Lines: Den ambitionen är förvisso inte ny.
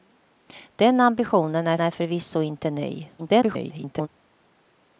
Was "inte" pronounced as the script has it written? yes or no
yes